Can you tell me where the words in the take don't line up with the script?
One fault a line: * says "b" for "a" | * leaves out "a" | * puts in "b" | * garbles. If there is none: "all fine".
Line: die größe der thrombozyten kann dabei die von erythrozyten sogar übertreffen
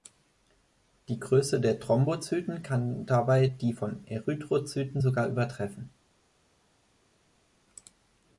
all fine